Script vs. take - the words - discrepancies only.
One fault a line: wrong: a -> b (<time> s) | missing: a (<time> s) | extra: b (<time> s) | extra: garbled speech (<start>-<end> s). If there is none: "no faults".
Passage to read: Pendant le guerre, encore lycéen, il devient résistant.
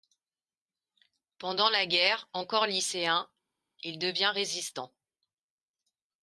wrong: le -> la (1.7 s)